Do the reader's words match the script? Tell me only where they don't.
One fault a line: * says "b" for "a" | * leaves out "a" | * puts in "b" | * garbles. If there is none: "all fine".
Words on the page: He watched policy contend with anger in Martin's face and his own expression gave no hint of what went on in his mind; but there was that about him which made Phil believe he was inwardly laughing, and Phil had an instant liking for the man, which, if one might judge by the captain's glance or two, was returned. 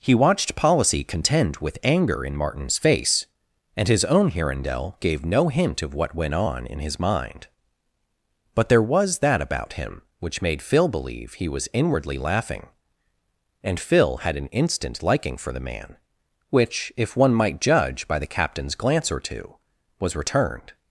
* says "hirondelle" for "expression"